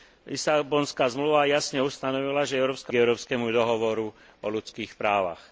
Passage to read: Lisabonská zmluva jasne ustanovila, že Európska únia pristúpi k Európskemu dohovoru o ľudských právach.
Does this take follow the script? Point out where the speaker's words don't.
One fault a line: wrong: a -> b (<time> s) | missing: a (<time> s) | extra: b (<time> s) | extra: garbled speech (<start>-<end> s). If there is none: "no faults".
missing: únia pristúpi (2.9 s)